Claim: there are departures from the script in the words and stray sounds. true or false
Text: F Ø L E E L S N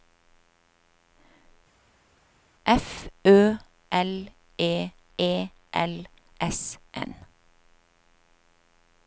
false